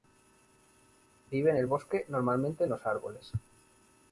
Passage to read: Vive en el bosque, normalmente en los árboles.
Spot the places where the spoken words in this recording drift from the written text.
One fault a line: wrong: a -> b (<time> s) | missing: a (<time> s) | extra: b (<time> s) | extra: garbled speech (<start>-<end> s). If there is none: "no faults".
no faults